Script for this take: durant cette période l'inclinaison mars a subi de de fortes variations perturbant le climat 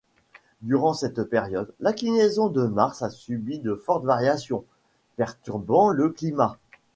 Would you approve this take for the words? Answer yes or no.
no